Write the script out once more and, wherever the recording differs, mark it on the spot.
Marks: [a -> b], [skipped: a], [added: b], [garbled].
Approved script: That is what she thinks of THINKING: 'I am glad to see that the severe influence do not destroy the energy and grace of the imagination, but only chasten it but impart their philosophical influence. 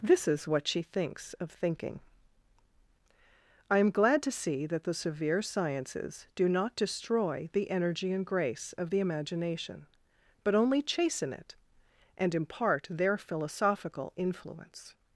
[That -> This] is what she thinks of THINKING: 'I am glad to see that the severe [influence -> sciences] do not destroy the energy and grace of the imagination, but only chasten it [but -> and] impart their philosophical influence.